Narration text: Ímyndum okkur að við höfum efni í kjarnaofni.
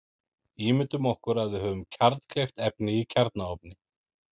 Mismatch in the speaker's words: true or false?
true